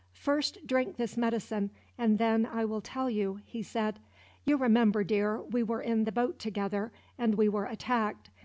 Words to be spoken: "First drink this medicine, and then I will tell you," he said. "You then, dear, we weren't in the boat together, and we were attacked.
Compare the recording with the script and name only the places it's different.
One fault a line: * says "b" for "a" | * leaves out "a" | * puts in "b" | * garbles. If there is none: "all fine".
* says "remember" for "then"
* says "were" for "weren't"